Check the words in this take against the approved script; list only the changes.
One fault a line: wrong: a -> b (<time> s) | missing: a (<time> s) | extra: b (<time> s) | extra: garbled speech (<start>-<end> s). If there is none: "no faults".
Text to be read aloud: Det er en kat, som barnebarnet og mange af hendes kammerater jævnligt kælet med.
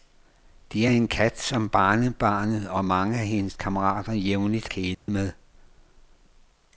no faults